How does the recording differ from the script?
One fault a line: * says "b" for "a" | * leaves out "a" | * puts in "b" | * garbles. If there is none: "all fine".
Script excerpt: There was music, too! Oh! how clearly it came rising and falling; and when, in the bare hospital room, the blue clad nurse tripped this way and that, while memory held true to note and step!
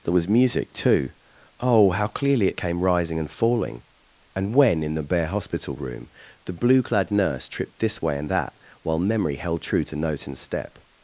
all fine